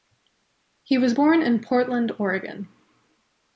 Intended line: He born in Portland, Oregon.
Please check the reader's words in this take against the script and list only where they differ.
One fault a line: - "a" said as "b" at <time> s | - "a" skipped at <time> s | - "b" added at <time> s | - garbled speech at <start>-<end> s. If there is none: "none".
- "was" added at 1.0 s